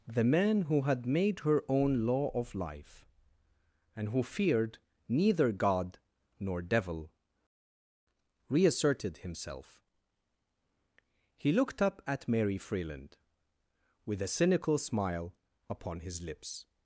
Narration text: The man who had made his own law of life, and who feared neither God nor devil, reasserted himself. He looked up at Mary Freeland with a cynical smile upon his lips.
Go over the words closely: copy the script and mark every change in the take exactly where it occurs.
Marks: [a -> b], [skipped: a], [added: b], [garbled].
The man who had made [his -> her] own law of life, and who feared neither God nor devil, reasserted himself. He looked up at Mary Freeland with a cynical smile upon his lips.